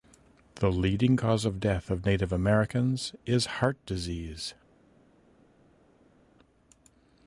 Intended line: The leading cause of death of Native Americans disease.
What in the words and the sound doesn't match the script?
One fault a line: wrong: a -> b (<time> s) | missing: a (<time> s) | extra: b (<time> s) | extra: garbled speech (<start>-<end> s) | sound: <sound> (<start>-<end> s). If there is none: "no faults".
extra: is heart (3.2 s)